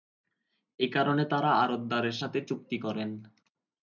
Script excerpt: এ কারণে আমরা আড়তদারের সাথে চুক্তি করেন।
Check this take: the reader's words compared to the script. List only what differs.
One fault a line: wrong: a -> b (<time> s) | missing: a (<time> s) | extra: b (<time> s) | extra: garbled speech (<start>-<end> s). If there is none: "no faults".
wrong: আমরা -> তারা (1.3 s)